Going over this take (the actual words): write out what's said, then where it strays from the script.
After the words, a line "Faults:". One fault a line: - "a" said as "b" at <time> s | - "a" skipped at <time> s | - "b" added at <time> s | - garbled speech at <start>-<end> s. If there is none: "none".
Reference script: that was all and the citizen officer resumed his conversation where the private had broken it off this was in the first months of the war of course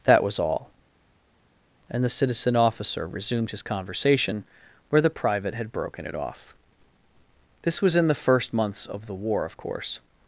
that was all and the citizen officer resumed his conversation where the private had broken it off this was in the first months of the war of course
Faults:
none